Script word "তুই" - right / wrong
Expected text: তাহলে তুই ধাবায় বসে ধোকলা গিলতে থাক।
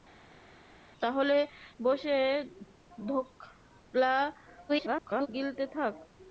wrong